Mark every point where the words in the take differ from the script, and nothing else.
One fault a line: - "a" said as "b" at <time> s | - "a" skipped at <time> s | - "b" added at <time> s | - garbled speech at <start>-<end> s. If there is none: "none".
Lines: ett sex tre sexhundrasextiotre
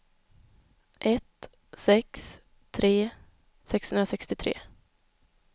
none